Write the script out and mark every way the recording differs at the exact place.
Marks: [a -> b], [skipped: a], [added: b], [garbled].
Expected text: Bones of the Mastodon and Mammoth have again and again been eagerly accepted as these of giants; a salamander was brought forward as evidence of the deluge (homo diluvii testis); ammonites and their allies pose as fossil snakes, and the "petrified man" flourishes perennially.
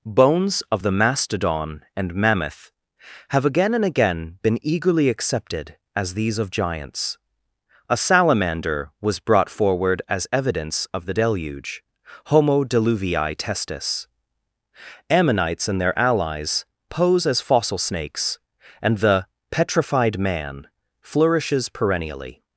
Bones of the Mastodon and Mammoth have again and again been eagerly accepted as these of giants; a salamander was brought forward as evidence of the deluge (homo diluvii testis); ammonites and their allies pose as fossil snakes, and the "petrified man" flourishes perennially.